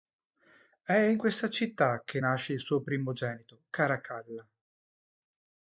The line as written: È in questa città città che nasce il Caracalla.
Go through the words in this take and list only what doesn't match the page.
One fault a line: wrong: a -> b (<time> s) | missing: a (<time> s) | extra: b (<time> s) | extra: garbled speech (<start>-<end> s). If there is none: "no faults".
missing: città (2.0 s)
extra: suo primogenito (2.6 s)